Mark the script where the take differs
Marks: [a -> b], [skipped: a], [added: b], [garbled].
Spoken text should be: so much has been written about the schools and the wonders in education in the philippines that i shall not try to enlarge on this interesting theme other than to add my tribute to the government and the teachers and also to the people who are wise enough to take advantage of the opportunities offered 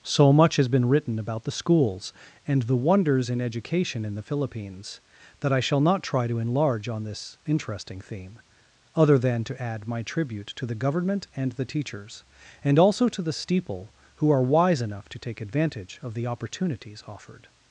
so much has been written about the schools and the wonders in education in the philippines that i shall not try to enlarge on this interesting theme other than to add my tribute to the government and the teachers and also to the [people -> steeple] who are wise enough to take advantage of the opportunities offered